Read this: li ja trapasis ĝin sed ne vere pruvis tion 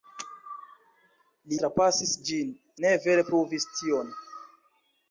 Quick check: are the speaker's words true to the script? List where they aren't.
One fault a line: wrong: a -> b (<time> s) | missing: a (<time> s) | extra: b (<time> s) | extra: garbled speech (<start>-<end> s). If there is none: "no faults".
missing: ja (1.6 s)
missing: sed (2.5 s)